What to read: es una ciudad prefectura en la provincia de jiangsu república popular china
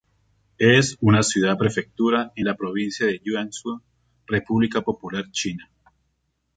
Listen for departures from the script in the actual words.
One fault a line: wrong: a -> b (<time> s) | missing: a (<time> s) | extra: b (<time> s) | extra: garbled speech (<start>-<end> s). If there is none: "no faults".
no faults